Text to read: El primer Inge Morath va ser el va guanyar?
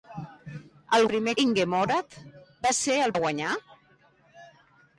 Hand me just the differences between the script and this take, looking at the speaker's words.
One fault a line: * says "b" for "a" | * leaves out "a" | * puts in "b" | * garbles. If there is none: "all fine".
all fine